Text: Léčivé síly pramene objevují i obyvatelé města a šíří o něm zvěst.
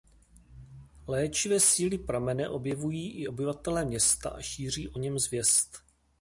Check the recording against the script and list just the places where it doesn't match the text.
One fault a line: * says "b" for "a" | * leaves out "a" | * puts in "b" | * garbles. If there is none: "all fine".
all fine